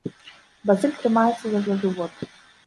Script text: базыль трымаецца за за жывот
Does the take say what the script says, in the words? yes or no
yes